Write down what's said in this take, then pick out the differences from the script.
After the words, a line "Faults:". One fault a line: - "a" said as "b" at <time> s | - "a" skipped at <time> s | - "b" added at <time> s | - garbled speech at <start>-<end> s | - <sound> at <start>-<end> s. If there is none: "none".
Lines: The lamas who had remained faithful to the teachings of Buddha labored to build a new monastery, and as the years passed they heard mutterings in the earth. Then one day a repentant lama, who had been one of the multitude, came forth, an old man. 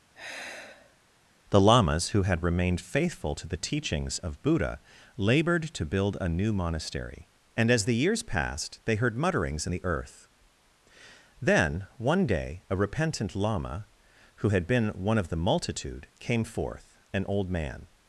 The lamas who had remained faithful to the teachings of Buddha labored to build a new monastery, and as the years passed they heard mutterings in the earth. Then one day a repentant lama, who had been one of the multitude, came forth, an old man.
Faults:
- sigh at 0.1-1.0 s